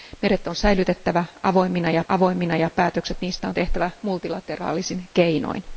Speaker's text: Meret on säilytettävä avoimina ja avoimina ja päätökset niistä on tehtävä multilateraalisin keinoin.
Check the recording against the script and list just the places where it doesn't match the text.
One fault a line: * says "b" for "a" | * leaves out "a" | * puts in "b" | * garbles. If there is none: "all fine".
all fine